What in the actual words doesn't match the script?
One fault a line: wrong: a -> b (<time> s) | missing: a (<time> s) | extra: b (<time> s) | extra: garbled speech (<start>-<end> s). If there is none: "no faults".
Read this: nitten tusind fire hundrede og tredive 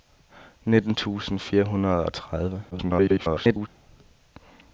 extra: garbled speech (2.7-3.7 s)